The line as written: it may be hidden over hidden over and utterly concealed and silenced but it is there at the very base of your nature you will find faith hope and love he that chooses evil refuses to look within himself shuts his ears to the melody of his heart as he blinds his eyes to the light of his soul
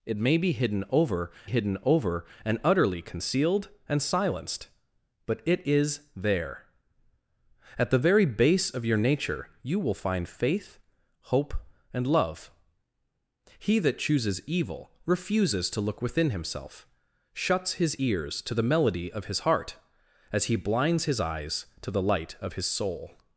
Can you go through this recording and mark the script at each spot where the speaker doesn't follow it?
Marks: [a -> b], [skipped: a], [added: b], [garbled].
it may be hidden over hidden over and utterly concealed and silenced but it is there at the very base of your nature you will find faith hope and love he that chooses evil refuses to look within himself shuts his ears to the melody of his heart as he blinds his eyes to the light of his soul